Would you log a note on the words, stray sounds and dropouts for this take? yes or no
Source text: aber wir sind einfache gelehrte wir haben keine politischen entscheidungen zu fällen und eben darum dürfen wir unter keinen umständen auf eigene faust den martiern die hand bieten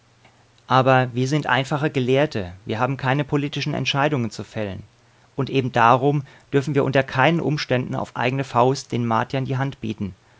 no